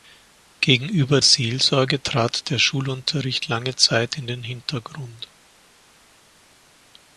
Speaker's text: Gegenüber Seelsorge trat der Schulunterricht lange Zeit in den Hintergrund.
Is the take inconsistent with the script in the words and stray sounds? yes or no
no